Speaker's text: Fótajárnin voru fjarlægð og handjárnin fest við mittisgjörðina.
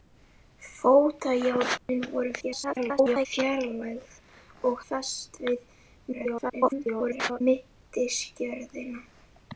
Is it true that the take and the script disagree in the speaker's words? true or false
true